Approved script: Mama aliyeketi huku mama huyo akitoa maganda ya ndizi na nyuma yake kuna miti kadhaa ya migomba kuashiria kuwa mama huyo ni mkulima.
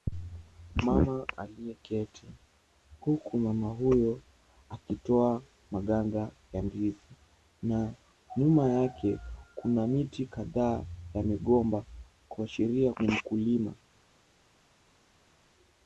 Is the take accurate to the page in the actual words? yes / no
no